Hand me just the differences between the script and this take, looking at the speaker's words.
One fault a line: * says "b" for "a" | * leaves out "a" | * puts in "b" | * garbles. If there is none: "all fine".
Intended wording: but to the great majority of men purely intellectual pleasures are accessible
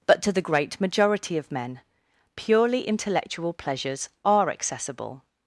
all fine